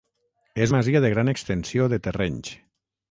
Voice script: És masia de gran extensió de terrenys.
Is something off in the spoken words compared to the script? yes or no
no